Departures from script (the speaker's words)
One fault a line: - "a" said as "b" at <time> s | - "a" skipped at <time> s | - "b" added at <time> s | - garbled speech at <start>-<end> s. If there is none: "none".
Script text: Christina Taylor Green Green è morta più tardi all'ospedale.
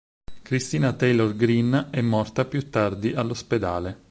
- "Green" skipped at 1.9 s